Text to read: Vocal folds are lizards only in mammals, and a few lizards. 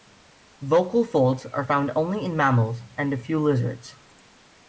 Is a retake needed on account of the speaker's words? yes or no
yes